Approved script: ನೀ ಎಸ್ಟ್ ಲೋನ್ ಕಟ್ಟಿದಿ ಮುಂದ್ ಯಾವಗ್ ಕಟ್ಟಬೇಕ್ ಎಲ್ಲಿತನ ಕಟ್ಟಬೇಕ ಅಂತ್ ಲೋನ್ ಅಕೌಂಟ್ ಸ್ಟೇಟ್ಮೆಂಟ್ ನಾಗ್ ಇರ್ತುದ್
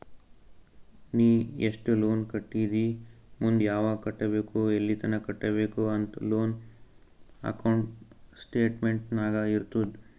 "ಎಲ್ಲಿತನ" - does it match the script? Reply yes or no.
yes